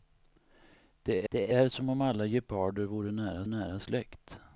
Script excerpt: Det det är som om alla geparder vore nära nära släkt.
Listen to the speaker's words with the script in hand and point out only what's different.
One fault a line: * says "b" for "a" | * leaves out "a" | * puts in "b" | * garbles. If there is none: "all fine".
all fine